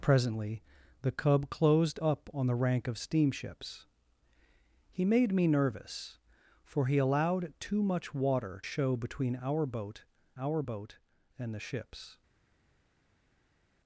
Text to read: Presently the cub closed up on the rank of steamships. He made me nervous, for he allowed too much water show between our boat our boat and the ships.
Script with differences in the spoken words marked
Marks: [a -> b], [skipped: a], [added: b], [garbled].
Presently the cub closed up on the rank of steamships. He made me nervous, for he allowed too much water show between our boat our boat and the ships.